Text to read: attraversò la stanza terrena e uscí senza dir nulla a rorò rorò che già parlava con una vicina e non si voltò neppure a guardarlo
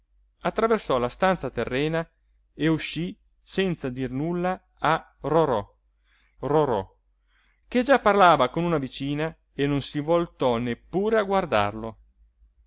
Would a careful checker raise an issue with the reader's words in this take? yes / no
no